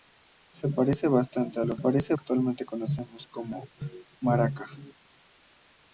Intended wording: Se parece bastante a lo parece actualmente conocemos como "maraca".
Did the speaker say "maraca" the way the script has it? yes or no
yes